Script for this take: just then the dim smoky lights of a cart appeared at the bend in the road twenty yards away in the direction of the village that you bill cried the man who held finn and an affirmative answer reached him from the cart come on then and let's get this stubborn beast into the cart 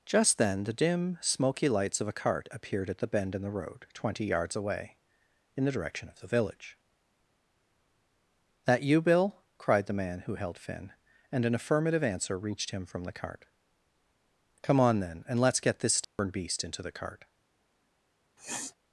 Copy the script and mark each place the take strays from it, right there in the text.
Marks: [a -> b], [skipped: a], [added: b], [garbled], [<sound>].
just then the dim smoky lights of a cart appeared at the bend in the road twenty yards away in the direction of the village that you bill cried the man who held finn and an affirmative answer reached him from the cart come on then and let's get this stubborn [dropout] beast into the cart [sniff]